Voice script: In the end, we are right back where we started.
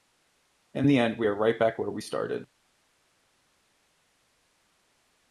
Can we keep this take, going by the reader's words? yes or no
yes